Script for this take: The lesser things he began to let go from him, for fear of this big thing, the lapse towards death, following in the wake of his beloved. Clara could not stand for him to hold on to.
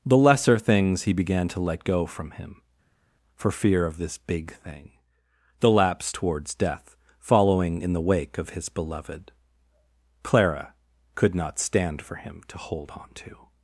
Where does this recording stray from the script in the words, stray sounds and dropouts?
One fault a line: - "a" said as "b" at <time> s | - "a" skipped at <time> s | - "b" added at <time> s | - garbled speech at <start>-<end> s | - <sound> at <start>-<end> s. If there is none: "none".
none